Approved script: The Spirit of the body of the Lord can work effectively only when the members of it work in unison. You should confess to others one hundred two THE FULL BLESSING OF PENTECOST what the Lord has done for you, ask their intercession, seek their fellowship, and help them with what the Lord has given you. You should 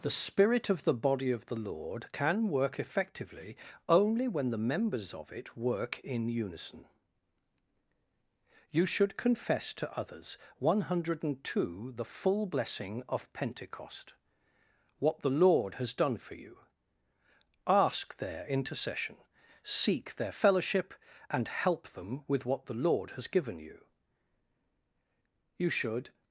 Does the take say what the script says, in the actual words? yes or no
yes